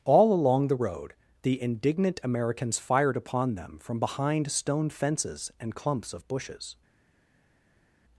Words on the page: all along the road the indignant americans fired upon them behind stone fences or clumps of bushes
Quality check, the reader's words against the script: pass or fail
fail